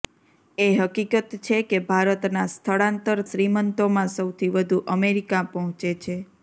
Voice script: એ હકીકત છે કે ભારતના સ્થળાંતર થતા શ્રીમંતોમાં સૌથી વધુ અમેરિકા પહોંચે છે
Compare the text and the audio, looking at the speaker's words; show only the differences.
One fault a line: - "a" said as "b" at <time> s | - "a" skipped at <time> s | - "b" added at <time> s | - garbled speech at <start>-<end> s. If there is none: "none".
- "થતા" skipped at 3.2 s